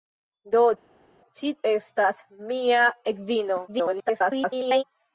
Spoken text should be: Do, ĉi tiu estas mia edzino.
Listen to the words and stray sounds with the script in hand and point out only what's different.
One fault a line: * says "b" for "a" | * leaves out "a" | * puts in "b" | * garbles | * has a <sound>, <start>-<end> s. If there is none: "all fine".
* leaves out "tiu"
* garbles